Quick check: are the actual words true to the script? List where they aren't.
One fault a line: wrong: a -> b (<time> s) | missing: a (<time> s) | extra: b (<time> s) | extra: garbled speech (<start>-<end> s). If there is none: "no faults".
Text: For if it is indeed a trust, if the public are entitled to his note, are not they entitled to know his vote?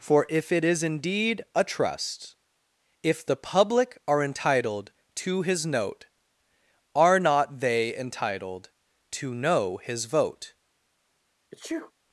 no faults